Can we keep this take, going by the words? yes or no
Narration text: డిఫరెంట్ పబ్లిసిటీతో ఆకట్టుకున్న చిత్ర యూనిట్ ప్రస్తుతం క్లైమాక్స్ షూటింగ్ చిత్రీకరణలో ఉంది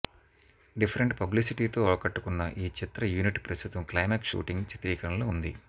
no